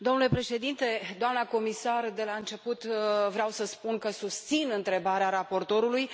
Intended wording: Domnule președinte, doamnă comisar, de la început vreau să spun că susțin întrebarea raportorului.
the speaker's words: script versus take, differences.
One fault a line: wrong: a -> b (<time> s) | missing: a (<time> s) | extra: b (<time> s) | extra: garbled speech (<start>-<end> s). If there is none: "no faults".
no faults